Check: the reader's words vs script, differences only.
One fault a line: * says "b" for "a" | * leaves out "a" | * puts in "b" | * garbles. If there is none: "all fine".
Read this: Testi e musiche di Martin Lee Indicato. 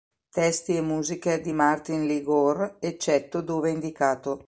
* puts in "Gore eccetto dove"